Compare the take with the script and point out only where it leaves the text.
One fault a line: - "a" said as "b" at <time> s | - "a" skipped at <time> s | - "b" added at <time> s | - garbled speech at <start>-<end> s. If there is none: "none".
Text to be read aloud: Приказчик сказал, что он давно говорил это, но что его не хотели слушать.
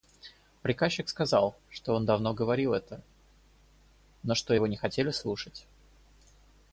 none